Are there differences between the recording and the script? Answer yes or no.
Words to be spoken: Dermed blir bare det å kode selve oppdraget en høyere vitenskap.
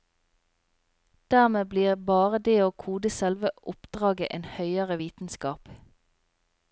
no